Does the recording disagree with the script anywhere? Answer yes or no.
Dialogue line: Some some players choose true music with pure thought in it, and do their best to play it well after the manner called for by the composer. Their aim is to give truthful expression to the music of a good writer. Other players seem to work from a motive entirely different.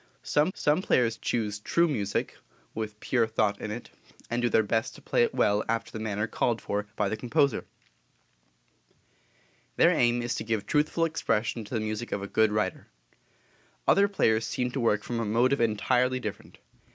no